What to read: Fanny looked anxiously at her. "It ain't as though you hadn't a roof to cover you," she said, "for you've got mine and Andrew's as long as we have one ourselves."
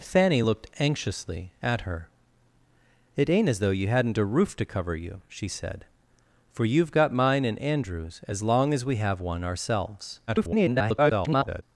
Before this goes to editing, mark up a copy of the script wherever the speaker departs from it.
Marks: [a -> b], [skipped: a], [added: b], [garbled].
Fanny looked anxiously at her. "It ain't as though you hadn't a roof to cover you," she said, "for you've got mine and Andrew's as long as we have one ourselves." [garbled]